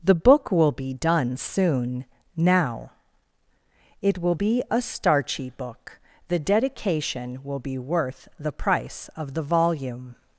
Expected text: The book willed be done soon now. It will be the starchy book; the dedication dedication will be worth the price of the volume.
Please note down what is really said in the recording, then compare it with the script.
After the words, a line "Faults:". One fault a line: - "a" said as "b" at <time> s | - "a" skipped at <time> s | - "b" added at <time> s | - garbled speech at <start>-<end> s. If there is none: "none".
The book will be done soon now. It will be a starchy book; the dedication will be worth the price of the volume.
Faults:
- "willed" said as "will" at 0.5 s
- "the" said as "a" at 4.7 s
- "dedication" skipped at 7.4 s